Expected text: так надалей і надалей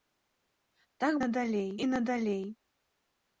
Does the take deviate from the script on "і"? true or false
false